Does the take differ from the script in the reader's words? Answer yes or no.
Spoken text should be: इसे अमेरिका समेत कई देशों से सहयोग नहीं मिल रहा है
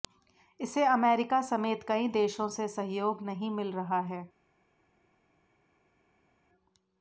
no